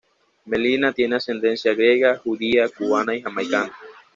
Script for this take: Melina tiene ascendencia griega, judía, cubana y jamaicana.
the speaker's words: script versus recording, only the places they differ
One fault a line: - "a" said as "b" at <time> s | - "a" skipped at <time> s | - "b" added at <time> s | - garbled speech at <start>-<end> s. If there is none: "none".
none